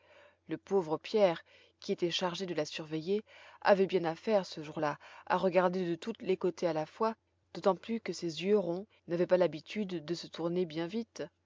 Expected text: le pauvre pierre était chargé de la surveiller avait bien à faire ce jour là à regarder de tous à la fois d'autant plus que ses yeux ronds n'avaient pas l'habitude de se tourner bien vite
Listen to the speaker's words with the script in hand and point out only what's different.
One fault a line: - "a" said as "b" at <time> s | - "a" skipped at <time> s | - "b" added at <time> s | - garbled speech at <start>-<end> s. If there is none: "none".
- "qui" added at 1.8 s
- "les côtés" added at 6.2 s